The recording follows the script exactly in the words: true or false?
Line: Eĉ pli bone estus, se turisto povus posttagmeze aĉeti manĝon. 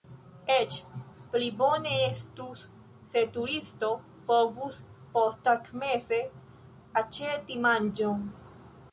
true